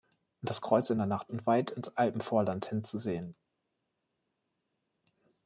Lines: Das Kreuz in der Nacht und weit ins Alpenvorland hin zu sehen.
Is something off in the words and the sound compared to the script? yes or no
no